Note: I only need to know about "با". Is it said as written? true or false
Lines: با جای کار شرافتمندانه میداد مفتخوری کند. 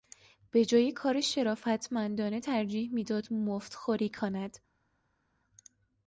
false